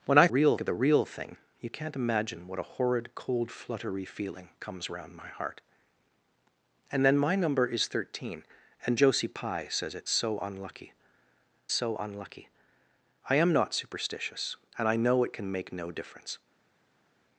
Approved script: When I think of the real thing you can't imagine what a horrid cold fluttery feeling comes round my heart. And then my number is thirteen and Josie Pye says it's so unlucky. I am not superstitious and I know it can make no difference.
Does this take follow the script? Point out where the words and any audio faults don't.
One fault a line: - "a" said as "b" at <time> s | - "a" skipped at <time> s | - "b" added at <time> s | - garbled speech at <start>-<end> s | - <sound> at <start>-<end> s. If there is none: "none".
- "think" said as "real" at 0.3 s
- "so unlucky" added at 11.7 s